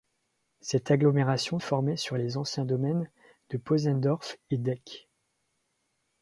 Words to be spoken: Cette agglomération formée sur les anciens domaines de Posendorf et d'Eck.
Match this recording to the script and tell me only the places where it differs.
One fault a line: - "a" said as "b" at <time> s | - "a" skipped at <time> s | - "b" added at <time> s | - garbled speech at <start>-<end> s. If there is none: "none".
none